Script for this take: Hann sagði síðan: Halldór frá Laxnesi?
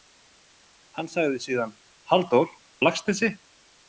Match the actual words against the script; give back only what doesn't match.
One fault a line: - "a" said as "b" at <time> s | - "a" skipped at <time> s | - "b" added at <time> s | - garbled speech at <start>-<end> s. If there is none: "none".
- "frá" skipped at 2.5 s